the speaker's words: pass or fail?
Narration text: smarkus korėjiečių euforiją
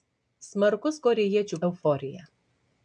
pass